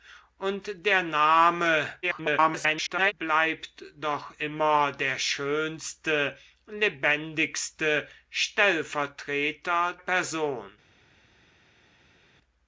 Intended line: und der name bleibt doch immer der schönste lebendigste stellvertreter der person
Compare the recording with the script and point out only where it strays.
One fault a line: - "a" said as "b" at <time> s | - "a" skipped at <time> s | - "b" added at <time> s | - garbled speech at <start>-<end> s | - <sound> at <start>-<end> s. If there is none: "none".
- garbled speech at 2.0-3.1 s
- "der" skipped at 9.9 s